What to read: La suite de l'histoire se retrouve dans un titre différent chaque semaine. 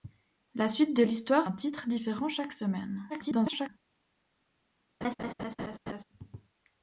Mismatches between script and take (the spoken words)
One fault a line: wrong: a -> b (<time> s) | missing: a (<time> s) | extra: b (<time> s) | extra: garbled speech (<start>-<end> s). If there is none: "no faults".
missing: se retrouve dans (1.5 s)
extra: garbled speech (3.1-3.7 s)